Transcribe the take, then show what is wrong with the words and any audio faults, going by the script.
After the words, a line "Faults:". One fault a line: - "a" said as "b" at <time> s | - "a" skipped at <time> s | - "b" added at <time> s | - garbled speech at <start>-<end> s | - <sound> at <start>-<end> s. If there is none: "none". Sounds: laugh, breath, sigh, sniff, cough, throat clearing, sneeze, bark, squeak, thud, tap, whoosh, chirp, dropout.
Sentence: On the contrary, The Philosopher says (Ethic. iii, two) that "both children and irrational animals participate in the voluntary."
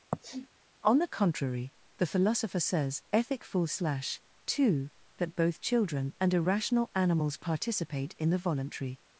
On the contrary, The Philosopher says (Ethic. full slash, two) that "both children and irrational animals participate in the voluntary."
Faults:
- sniff at 0.1-0.5 s
- "iii" said as "full slash" at 3.4 s